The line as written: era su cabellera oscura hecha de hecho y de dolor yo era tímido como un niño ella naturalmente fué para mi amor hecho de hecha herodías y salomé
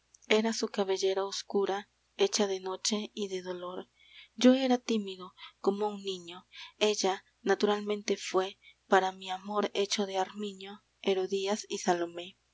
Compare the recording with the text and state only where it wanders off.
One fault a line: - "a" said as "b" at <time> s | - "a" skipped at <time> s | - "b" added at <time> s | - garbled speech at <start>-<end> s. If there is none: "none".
- "hecho" said as "noche" at 2.6 s
- "hecha" said as "armiño" at 10.2 s